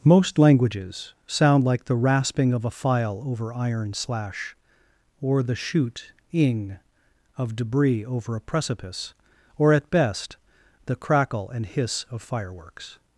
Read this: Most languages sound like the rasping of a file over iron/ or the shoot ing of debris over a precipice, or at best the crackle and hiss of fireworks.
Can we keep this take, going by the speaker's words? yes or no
no